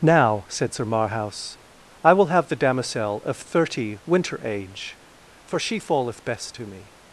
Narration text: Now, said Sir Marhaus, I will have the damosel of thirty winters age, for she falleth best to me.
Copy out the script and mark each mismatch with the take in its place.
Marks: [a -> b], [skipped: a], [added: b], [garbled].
Now, said Sir Marhaus, I will have the damosel of thirty [winters -> winter] age, for she falleth best to me.